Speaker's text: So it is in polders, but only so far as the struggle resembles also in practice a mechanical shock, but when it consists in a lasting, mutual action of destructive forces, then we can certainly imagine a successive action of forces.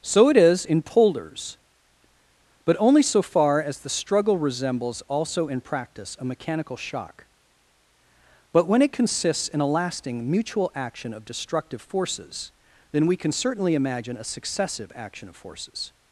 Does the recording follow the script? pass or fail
pass